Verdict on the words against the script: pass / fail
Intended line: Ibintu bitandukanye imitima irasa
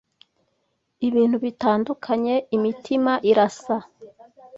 pass